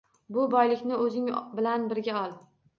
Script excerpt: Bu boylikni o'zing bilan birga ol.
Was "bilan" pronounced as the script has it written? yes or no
yes